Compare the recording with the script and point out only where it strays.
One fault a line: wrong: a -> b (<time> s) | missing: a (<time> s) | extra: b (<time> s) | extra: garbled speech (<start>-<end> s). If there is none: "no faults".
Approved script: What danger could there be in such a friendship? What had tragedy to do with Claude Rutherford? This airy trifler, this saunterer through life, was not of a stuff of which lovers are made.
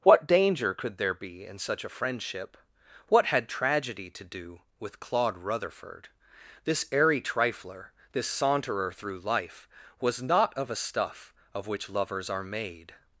no faults